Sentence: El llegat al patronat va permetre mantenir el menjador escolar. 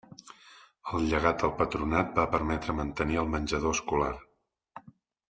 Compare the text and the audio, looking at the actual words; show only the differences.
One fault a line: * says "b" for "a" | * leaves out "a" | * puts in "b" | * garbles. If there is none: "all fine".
all fine